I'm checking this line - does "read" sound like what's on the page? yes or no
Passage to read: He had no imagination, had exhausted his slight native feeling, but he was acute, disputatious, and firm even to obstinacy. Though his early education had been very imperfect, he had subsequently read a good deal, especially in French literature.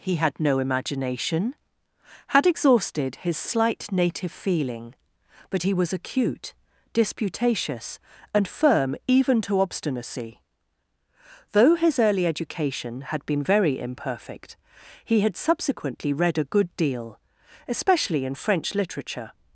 yes